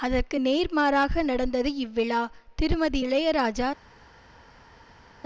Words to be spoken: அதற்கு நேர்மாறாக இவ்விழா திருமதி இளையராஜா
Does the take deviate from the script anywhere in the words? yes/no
yes